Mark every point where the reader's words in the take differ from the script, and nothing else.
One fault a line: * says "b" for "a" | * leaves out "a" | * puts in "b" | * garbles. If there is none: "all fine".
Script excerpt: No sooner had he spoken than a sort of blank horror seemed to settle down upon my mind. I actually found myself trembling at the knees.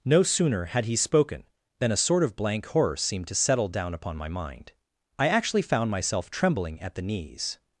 all fine